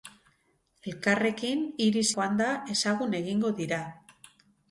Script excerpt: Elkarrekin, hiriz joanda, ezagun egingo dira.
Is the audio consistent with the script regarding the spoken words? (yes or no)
yes